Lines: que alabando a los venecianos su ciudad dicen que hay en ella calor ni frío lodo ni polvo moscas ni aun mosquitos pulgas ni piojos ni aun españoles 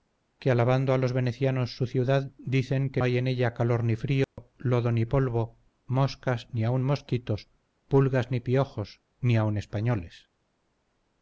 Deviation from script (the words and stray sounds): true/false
true